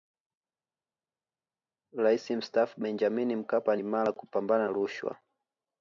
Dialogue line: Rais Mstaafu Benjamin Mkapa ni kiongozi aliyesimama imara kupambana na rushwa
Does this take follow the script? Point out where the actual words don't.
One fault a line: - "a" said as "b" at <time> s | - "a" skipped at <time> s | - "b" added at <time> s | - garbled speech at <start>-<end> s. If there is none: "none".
- "ni kiongozi aliyesimama" skipped at 3.8 s
- "na" skipped at 4.7 s